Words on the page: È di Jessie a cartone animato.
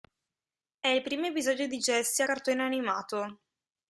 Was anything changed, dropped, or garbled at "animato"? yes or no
no